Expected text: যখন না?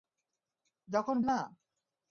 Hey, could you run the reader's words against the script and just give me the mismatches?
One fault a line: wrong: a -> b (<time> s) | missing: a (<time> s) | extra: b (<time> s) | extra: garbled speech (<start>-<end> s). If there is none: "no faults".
no faults